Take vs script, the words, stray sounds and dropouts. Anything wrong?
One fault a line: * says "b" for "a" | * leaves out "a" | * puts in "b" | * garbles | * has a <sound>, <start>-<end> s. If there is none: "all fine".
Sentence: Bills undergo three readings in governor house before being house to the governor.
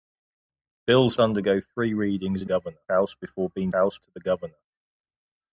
all fine